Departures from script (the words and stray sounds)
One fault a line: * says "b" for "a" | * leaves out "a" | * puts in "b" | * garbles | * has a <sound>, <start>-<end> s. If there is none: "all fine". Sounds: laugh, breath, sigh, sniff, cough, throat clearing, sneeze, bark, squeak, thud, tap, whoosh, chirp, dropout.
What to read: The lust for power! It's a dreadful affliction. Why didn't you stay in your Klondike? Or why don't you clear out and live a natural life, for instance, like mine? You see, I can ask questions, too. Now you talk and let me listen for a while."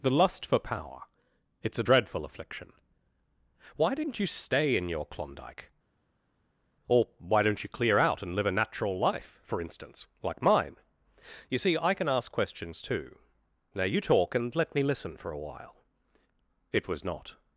* puts in "It was not"